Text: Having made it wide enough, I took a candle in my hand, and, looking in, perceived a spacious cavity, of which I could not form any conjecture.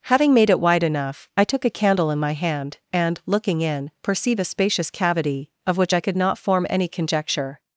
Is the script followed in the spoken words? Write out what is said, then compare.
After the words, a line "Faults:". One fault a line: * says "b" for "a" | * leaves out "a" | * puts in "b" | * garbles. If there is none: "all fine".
Having made it wide enough, I took a candle in my hand, and, looking in, perceive a spacious cavity, of which I could not form any conjecture.
Faults:
* says "perceive" for "perceived"